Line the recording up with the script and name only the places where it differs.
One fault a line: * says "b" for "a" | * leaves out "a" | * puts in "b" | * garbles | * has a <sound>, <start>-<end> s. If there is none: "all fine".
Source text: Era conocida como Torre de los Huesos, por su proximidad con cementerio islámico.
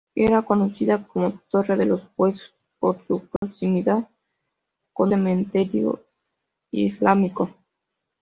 * has a dropout, 3.4-3.4 s